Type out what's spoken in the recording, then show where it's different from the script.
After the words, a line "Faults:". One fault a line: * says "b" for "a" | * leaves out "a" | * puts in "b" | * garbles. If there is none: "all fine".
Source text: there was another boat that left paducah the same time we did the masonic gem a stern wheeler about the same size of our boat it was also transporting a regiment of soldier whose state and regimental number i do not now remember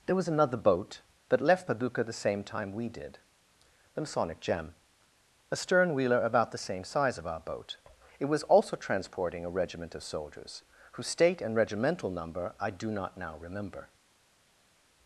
there was another boat that left paducah the same time we did the masonic gem a stern wheeler about the same size of our boat it was also transporting a regiment of soldiers whose state and regimental number i do not now remember
Faults:
* says "soldiers" for "soldier"